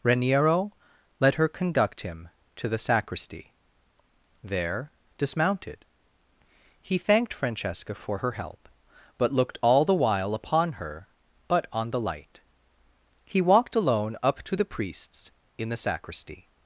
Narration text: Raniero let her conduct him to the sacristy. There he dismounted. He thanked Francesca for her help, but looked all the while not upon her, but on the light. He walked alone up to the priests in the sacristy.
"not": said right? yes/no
no